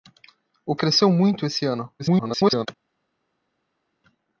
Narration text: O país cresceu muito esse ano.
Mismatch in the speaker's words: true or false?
true